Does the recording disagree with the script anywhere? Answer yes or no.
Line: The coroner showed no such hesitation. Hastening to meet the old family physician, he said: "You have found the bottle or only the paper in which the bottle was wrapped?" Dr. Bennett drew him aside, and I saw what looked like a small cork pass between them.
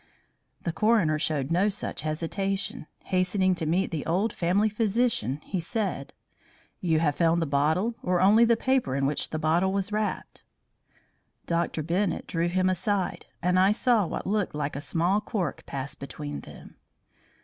no